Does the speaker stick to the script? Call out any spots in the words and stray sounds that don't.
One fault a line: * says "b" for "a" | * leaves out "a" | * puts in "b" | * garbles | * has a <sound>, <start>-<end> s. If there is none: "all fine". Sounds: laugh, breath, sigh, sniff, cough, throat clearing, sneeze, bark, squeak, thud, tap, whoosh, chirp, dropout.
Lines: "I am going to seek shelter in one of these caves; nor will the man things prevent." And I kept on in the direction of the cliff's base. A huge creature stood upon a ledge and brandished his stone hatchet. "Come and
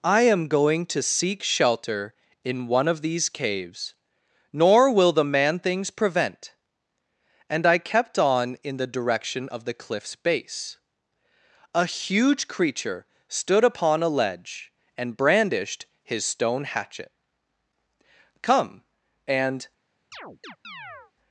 * has a chirp, 20.1-21.1 s